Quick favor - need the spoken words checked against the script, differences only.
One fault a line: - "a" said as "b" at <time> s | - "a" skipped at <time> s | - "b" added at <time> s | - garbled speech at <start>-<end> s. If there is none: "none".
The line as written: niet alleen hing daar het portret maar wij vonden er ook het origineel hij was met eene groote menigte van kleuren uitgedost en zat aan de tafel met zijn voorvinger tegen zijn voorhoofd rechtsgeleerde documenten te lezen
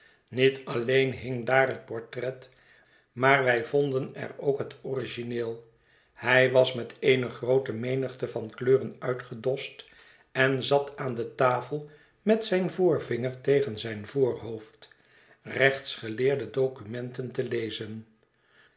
none